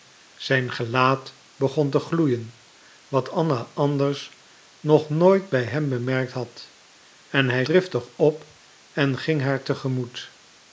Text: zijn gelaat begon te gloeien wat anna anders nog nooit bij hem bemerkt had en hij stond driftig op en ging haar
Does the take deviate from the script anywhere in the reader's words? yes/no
yes